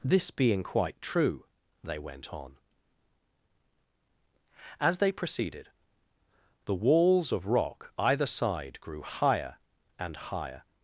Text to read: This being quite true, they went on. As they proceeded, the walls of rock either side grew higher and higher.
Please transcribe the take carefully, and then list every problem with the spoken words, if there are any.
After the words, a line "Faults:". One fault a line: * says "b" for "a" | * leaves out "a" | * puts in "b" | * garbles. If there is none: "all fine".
This being quite true, they went on. As they proceeded, the walls of rock either side grew higher and higher.
Faults:
all fine